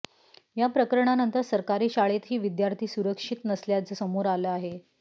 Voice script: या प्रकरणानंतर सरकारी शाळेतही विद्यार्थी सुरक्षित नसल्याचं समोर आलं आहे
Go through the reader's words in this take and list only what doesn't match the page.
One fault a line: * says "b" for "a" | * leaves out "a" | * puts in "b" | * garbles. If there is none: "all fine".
all fine